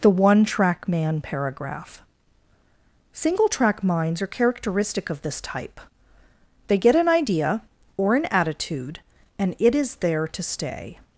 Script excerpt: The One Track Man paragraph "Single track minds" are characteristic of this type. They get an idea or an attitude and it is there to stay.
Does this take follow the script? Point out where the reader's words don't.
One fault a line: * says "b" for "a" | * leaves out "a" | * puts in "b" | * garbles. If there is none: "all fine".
all fine